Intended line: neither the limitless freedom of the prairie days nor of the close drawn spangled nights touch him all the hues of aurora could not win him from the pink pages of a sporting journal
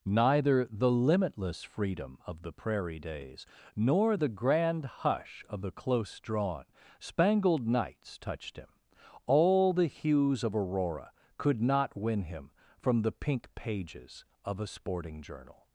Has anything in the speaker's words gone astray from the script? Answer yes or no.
yes